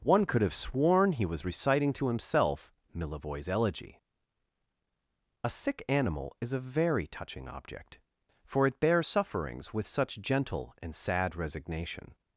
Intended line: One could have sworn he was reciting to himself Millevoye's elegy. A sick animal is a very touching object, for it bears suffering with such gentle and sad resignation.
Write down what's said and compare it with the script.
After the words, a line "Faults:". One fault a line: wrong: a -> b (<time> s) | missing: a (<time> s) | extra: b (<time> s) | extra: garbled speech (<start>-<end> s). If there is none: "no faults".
One could have sworn he was reciting to himself Millevoye's elegy. A sick animal is a very touching object, for it bears sufferings with such gentle and sad resignation.
Faults:
wrong: suffering -> sufferings (9.0 s)